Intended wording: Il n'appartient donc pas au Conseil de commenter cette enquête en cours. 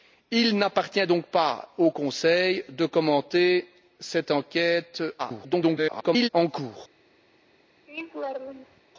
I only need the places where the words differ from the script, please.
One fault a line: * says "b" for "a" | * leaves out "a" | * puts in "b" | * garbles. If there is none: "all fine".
* garbles